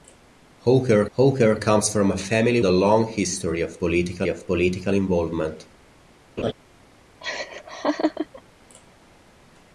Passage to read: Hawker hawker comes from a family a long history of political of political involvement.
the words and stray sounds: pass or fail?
fail